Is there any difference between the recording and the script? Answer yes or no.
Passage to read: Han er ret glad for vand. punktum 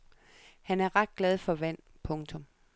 no